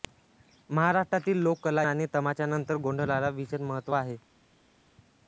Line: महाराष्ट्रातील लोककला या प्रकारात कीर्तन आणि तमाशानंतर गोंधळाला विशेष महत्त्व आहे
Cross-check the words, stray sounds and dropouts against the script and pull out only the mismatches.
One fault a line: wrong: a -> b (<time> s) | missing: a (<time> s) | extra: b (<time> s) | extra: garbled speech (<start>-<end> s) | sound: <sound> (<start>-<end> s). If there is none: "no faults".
missing: या प्रकारात कीर्तन (1.8 s)